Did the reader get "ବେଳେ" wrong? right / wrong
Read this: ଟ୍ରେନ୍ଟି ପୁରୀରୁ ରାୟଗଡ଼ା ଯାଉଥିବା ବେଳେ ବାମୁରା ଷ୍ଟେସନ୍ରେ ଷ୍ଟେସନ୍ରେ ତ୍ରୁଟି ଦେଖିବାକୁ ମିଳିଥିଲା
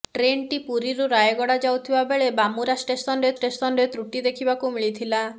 right